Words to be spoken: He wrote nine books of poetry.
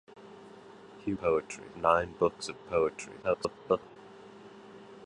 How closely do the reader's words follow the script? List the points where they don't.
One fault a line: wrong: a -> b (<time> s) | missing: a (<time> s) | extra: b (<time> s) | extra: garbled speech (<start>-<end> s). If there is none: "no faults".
wrong: wrote -> poetry (1.2 s)
extra: garbled speech (3.2-4.0 s)